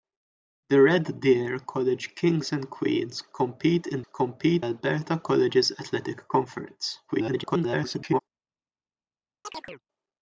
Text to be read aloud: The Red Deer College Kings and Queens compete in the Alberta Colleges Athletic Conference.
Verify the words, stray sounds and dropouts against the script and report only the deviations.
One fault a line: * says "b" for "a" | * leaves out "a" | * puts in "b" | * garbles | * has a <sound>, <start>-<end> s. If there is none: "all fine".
* says "compete" for "the"
* garbles
* has a chirp, 9.4-9.8 s